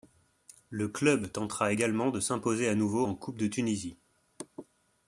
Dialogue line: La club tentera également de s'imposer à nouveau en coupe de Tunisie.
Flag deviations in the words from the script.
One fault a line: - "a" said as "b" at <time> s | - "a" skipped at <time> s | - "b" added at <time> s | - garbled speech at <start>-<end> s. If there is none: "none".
- "La" said as "Le" at 0.7 s